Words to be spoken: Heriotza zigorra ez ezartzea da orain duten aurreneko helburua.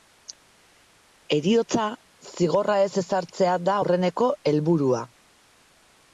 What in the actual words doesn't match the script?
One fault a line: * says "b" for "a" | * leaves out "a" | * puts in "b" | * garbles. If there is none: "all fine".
* leaves out "orain duten"